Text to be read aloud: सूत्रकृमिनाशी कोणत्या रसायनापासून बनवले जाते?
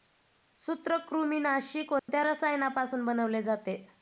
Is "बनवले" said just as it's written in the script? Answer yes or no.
yes